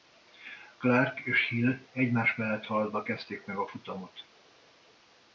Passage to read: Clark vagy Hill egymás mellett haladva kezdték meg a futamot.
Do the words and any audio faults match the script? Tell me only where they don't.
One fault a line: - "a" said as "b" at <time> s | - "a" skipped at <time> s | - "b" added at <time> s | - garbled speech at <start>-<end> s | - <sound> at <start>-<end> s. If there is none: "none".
- "vagy" said as "és" at 1.2 s